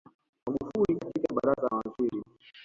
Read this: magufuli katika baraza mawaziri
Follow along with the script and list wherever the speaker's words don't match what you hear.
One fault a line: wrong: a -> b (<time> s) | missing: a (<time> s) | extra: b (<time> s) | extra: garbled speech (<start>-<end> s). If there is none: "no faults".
no faults